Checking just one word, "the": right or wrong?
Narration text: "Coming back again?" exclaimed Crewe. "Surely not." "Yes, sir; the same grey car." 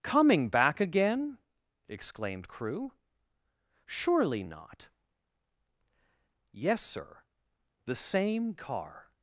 right